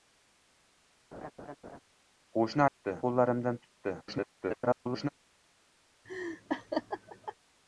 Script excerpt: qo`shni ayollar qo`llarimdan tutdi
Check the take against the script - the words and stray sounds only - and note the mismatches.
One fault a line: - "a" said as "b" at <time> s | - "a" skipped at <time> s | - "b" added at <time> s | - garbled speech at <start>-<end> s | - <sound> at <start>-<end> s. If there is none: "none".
- laugh at 1.1-1.8 s
- "ayollar" said as "tutdi" at 2.7 s
- garbled speech at 4.0-5.1 s
- laugh at 6.0-7.3 s